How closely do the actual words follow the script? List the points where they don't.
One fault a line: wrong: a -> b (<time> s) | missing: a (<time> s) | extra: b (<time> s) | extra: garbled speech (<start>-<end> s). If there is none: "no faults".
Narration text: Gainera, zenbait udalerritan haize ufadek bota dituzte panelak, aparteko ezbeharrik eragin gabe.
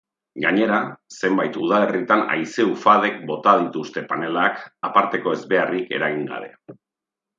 no faults